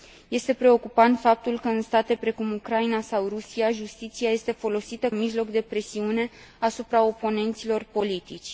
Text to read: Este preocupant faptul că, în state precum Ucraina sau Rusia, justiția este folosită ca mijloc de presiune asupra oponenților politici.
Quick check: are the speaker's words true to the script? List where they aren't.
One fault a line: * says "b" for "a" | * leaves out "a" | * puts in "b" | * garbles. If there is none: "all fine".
* leaves out "ca"